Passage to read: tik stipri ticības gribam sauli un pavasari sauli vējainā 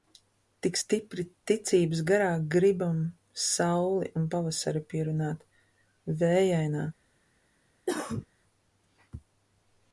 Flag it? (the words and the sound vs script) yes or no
yes